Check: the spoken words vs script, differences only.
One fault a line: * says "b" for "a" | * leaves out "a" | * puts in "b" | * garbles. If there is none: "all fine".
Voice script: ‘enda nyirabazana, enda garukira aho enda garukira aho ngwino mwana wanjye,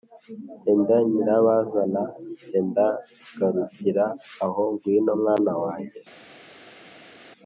* leaves out "enda garukira aho"